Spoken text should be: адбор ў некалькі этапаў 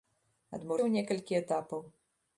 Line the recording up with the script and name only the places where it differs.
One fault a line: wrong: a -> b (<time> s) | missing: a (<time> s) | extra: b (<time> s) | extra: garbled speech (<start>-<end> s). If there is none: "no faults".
no faults